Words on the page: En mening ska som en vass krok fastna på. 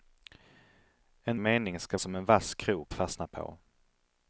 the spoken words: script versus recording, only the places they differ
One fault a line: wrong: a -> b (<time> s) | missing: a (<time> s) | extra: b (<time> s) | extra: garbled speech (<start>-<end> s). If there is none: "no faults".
no faults